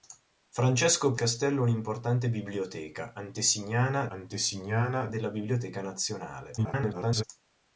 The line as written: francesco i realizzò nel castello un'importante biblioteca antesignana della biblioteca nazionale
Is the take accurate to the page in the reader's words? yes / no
no